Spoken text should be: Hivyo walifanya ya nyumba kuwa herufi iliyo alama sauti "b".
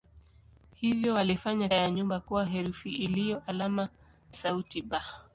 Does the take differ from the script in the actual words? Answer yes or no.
no